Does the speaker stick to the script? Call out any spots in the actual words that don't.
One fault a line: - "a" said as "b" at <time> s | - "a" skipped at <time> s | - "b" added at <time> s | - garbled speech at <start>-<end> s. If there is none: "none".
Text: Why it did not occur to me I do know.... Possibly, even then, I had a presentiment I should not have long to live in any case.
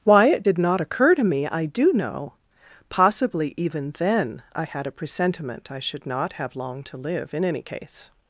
none